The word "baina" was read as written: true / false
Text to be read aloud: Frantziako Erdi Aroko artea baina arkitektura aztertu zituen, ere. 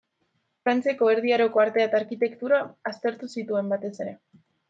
false